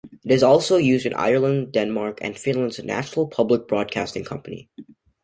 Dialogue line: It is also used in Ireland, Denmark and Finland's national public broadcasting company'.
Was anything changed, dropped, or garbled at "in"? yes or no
no